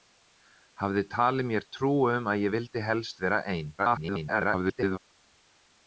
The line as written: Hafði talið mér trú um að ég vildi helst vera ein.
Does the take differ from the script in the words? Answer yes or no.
yes